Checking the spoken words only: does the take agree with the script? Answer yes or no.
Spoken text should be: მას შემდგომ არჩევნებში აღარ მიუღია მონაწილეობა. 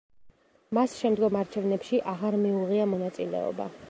yes